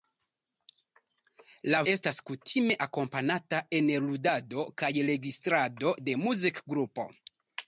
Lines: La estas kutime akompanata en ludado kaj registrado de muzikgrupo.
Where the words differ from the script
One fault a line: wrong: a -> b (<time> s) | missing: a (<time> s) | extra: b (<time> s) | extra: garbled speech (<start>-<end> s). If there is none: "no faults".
no faults